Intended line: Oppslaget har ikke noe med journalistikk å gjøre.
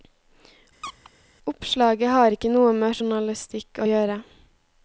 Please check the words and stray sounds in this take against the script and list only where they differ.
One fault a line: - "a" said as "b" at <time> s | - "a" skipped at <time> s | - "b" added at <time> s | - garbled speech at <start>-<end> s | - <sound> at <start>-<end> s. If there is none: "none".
- squeak at 0.8-1.1 s